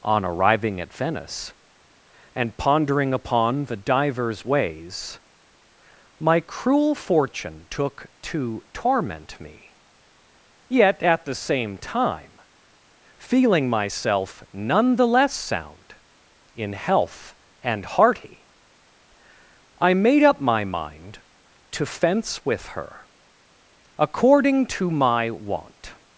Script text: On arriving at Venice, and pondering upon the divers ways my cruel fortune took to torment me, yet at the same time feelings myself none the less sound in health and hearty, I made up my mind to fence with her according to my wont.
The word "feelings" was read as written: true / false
false